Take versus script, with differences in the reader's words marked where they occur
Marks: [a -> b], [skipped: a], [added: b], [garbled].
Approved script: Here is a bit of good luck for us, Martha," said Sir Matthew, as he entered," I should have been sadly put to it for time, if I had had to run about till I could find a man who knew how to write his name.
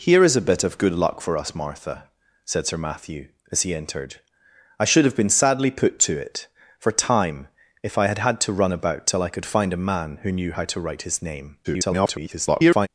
Here is a bit of good luck for us, Martha," said Sir Matthew, as he entered," I should have been sadly put to it for time, if I had had to run about till I could find a man who knew how to write his name. [garbled]